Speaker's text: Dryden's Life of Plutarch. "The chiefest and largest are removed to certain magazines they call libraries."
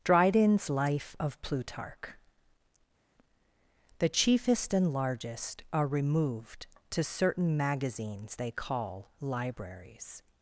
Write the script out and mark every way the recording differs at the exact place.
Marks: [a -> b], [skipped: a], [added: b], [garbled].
Dryden's Life of Plutarch. "The chiefest and largest are removed to certain magazines they call libraries."